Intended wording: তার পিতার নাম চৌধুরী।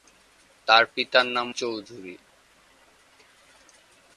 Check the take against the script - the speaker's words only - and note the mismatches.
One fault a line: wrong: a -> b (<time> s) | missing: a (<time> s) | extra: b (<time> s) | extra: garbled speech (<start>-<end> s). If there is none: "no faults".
no faults